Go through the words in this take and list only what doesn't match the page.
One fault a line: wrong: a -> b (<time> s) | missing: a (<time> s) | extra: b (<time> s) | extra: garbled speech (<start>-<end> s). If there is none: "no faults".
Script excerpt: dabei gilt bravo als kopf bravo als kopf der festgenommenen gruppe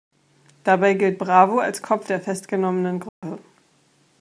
missing: bravo als kopf (2.1 s)